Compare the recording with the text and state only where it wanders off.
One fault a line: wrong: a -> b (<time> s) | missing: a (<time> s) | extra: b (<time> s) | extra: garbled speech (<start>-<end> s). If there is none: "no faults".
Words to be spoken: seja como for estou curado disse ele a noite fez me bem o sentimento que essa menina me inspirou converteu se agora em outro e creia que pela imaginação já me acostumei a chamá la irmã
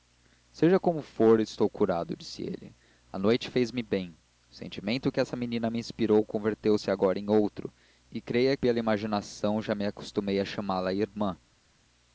missing: que (8.5 s)